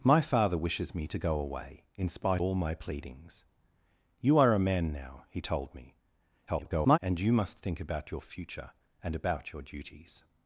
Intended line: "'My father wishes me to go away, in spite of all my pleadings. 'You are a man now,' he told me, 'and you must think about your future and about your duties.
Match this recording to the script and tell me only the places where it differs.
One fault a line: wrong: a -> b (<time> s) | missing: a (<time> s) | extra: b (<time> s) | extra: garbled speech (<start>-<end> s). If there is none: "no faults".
missing: of (2.4 s)
extra: garbled speech (6.5-7.0 s)